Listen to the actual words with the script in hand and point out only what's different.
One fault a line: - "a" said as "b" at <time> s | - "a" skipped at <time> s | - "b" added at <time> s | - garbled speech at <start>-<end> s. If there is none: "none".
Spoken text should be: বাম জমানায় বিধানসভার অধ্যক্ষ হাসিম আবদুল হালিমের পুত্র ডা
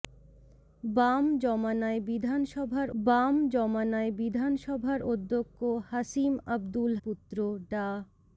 - "বাম জমানায় বিধানসভার" added at 3.0 s
- "হালিমের" skipped at 6.9 s